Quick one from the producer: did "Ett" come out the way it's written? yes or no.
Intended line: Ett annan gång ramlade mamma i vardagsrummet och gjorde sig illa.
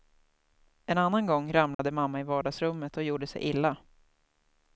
no